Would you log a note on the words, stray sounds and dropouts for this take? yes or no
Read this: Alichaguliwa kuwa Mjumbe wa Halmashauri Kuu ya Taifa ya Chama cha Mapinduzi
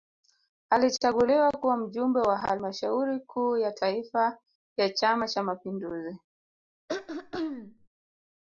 yes